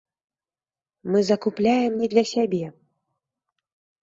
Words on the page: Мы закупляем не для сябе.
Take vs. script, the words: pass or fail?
pass